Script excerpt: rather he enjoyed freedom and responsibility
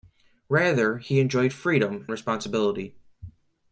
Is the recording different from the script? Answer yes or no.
yes